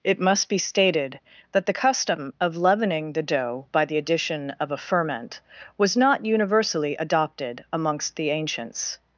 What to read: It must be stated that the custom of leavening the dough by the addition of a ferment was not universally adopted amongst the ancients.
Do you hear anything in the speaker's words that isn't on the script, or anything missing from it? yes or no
no